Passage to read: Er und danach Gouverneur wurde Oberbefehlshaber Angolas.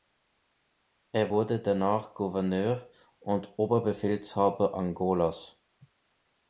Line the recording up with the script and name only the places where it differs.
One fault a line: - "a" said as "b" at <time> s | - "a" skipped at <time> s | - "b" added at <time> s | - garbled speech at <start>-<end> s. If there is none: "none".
- "und" said as "wurde" at 1.3 s
- "wurde" said as "und" at 3.2 s